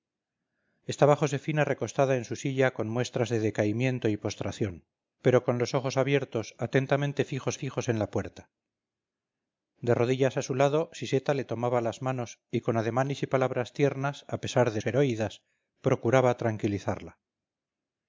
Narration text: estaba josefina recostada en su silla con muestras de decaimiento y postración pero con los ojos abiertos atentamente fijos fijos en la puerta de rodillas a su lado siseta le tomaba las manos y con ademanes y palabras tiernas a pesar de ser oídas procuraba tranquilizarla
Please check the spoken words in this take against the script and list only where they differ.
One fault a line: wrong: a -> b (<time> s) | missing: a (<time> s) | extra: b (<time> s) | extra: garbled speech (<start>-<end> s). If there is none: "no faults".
no faults